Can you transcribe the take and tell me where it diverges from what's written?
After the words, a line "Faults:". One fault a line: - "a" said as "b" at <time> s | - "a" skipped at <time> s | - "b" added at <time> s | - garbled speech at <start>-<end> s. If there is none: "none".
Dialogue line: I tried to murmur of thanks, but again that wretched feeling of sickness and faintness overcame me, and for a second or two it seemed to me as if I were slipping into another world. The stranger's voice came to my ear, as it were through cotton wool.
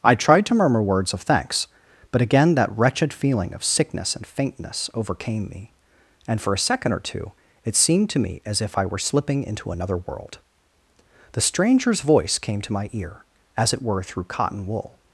I tried to murmur words of thanks, but again that wretched feeling of sickness and faintness overcame me, and for a second or two it seemed to me as if I were slipping into another world. The stranger's voice came to my ear, as it were through cotton wool.
Faults:
- "words" added at 0.8 s